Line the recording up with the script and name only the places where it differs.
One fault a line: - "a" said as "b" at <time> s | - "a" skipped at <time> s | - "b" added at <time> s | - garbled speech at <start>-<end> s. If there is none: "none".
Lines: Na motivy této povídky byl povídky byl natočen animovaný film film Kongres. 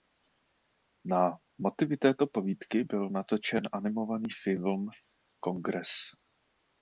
- "povídky byl" skipped at 3.1 s
- "film" skipped at 4.9 s